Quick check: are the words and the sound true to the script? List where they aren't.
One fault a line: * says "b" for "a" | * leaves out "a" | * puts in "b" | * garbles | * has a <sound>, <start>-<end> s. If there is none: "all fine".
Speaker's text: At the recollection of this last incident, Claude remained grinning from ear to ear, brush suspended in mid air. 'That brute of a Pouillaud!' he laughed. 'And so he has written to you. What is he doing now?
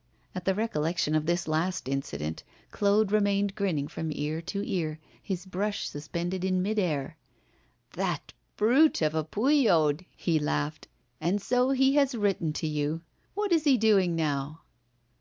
* puts in "his"